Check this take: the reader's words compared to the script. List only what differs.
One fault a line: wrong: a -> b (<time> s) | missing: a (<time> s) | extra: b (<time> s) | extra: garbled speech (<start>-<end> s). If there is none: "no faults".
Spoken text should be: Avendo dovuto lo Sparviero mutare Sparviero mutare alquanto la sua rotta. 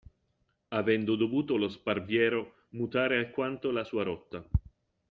missing: Sparviero mutare (3.2 s)